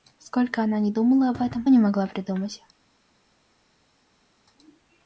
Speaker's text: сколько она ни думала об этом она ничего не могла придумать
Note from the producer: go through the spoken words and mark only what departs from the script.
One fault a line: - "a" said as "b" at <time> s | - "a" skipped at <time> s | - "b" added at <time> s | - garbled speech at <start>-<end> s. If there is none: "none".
- "она ничего" skipped at 1.7 s